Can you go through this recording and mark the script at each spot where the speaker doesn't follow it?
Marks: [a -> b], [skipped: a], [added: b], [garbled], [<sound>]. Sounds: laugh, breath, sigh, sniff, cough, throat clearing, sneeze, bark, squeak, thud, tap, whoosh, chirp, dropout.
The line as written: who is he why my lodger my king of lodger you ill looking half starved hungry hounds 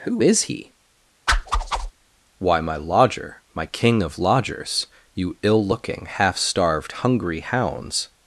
who is he [whoosh] why my lodger my king of [lodger -> lodgers] you ill looking half starved hungry hounds